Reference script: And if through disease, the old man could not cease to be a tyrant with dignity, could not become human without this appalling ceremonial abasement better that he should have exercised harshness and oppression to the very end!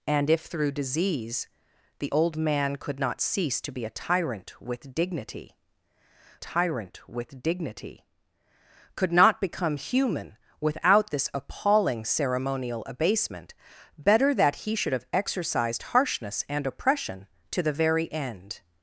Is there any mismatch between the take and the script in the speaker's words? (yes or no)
yes